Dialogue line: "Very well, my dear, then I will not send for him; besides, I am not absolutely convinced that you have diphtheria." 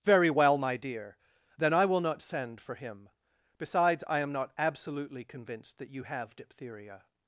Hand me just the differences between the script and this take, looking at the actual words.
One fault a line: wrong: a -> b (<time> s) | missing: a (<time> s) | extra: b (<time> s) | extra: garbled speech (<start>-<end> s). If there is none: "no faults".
no faults